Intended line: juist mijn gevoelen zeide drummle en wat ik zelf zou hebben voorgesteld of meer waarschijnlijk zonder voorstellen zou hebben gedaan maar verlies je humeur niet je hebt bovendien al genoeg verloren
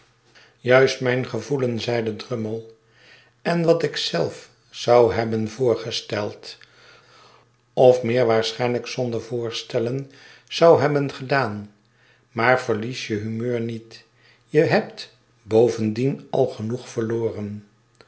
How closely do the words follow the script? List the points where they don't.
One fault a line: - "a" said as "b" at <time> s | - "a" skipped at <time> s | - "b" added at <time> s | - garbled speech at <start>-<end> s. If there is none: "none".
none